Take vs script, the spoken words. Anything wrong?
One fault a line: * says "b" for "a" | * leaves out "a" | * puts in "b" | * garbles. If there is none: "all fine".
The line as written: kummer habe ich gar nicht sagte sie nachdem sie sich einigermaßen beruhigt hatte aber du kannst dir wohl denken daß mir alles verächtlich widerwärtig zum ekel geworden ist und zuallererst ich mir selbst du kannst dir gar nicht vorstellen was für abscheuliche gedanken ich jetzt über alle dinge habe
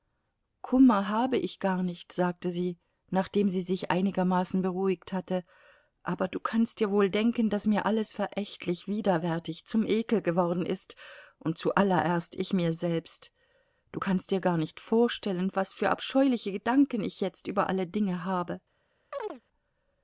all fine